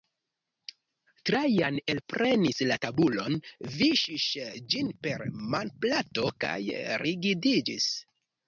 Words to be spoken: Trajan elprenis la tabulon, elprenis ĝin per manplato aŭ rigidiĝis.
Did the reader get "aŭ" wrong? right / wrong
wrong